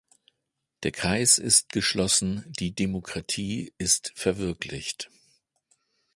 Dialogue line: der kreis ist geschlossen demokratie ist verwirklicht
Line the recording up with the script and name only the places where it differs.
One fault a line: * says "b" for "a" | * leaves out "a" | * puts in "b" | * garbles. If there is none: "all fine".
* puts in "die"